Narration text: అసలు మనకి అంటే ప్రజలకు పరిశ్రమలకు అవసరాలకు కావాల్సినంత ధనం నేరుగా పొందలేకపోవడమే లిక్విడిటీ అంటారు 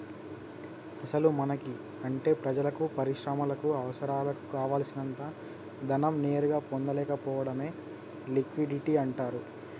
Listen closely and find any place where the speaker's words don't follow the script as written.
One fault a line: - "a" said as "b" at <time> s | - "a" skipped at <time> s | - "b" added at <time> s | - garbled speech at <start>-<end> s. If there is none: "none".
none